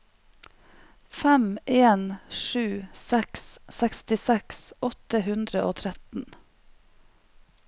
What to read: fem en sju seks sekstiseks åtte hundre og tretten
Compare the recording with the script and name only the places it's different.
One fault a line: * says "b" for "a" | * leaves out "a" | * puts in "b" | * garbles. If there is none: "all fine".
all fine